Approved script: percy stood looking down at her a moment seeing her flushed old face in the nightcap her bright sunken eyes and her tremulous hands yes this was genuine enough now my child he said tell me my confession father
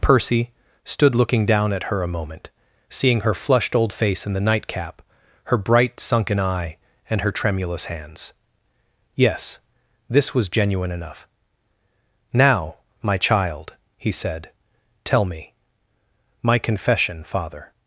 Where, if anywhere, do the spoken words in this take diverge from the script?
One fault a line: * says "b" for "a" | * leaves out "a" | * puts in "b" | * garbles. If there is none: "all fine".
* says "eye" for "eyes"